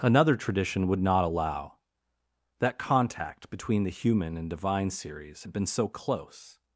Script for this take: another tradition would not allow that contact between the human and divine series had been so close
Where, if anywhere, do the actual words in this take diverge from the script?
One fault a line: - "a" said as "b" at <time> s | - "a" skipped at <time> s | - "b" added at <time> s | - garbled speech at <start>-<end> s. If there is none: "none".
none